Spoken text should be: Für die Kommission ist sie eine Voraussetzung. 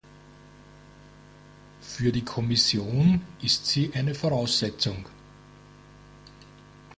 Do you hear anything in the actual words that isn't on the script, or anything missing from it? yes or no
no